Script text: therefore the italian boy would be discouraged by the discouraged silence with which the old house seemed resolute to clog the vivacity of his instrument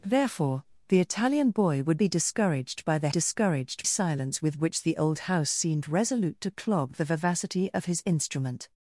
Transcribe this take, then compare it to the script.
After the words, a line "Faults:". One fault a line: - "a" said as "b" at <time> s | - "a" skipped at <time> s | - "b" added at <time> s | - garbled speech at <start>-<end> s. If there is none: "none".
therefore the italian boy would be discouraged by the discouraged silence with which the old house seemed resolute to clog the vivacity of his instrument
Faults:
none